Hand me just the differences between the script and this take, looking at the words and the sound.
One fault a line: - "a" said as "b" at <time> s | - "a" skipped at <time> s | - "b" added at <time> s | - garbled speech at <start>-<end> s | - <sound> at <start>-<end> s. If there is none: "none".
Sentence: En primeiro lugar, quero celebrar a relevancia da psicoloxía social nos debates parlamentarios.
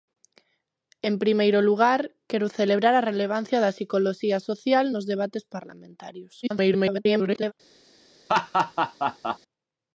- garbled speech at 6.4-7.5 s
- laugh at 8.3-9.4 s